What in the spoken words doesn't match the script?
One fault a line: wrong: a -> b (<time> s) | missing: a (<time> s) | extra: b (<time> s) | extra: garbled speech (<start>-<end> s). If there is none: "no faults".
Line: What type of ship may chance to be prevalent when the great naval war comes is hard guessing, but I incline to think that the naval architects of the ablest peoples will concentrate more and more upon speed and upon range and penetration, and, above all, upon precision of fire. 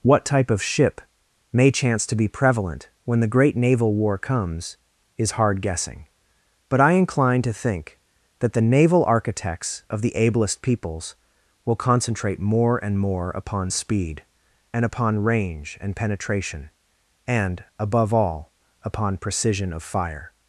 no faults